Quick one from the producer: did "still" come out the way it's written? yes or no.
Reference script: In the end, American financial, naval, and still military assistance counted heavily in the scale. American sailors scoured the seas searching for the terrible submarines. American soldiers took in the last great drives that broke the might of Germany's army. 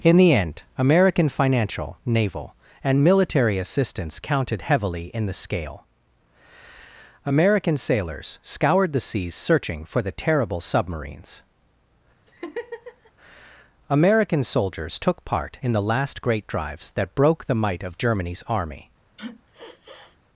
no